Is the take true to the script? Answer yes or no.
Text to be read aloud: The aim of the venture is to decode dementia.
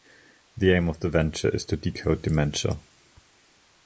yes